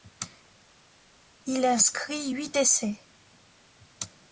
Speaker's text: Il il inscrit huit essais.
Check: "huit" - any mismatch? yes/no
no